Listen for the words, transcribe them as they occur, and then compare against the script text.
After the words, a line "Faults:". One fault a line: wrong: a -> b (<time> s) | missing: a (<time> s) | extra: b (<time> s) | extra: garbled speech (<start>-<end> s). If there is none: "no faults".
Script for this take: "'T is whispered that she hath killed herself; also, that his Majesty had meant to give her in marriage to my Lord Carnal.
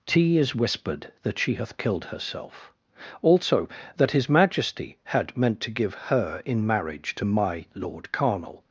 "'T is whispered that she hath killed herself; also, that his Majesty had meant to give her in marriage to my Lord Carnal.
Faults:
no faults